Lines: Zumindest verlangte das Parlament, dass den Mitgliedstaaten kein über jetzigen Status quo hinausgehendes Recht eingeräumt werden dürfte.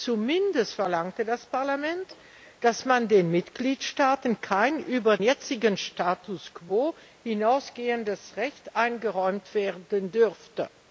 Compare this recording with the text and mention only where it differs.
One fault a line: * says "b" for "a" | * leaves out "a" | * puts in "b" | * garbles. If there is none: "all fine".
all fine